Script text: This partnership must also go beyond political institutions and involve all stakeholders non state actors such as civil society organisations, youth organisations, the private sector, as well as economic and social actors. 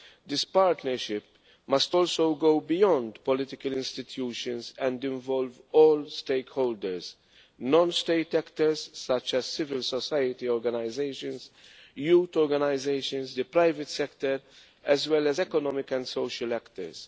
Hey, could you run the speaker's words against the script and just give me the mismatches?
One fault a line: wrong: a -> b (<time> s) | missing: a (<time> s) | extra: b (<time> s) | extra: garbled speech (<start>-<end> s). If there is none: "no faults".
no faults